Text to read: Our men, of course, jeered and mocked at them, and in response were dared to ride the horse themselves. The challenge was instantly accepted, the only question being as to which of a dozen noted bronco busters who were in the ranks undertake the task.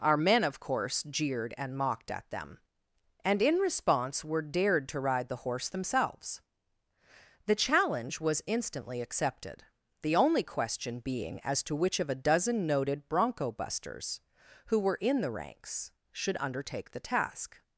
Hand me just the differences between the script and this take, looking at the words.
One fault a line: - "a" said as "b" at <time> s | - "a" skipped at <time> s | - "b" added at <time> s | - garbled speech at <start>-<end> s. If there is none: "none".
- "should" added at 16.1 s